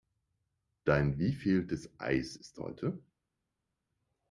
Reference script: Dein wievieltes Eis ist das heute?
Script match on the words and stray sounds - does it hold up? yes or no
no